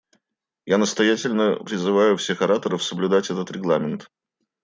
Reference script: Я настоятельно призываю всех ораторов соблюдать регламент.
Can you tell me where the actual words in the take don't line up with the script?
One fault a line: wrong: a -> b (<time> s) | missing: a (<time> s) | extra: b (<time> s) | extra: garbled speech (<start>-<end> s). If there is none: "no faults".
extra: этот (3.3 s)